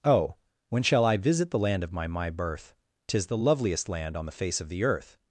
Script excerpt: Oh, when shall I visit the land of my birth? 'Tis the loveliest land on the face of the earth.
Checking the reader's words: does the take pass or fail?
fail